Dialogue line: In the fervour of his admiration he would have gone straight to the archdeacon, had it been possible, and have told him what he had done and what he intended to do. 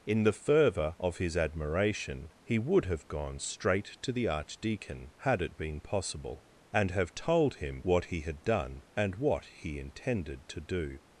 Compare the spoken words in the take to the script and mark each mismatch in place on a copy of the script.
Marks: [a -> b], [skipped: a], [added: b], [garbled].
In the fervour of his admiration he would have gone straight to the archdeacon, had it been possible, and have told him what he had done and what he intended to do.